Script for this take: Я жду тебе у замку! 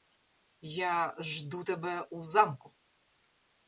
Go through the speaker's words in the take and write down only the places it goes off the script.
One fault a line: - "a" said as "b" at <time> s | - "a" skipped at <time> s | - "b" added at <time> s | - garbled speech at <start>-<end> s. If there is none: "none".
none